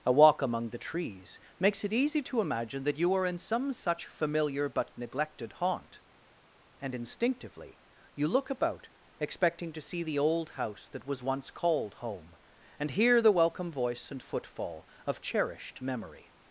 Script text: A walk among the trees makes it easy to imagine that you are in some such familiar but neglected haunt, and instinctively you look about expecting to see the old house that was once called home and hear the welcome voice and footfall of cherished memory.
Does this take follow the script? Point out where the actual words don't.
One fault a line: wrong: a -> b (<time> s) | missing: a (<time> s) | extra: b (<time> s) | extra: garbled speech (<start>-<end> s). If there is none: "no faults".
no faults